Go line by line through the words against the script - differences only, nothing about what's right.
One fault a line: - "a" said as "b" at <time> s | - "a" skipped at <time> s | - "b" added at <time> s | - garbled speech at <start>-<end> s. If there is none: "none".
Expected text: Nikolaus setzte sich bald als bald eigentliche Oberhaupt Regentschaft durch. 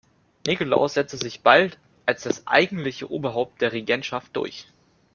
- "bald" said as "das" at 2.2 s
- "der" added at 3.6 s